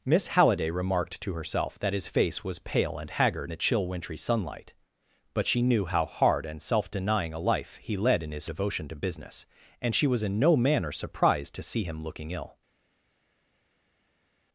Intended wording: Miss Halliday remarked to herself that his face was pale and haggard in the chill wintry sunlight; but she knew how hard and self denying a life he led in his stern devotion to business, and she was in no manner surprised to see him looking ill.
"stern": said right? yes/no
no